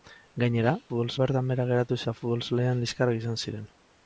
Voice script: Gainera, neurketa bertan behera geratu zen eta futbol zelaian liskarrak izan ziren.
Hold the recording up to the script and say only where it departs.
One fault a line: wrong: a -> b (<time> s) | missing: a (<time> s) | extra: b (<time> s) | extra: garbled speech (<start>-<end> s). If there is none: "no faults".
wrong: neurketa -> futbol (0.9 s)
missing: zen (2.0 s)